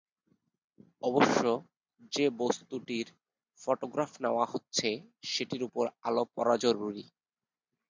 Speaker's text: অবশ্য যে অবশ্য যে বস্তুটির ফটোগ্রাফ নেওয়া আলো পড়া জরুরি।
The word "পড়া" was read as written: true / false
true